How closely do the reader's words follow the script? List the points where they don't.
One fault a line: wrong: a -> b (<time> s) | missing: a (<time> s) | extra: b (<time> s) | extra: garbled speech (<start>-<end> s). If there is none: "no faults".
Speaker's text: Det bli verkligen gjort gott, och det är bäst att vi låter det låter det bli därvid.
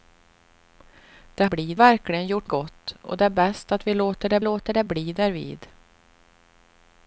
no faults